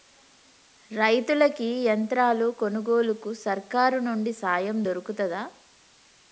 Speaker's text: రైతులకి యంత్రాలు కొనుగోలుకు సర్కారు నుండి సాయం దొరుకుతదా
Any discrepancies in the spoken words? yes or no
no